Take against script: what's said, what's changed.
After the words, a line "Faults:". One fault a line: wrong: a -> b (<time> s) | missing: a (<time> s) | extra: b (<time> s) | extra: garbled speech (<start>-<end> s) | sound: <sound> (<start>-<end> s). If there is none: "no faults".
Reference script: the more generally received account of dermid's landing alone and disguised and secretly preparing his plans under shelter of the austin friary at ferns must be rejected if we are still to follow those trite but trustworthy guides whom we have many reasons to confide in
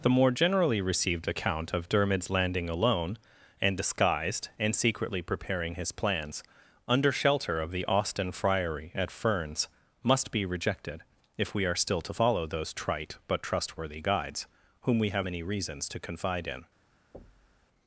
the more generally received account of dermid's landing alone and disguised and secretly preparing his plans under shelter of the austin friary at ferns must be rejected if we are still to follow those trite but trustworthy guides whom we have many reasons to confide in
Faults:
sound: thud (17.1-17.7 s)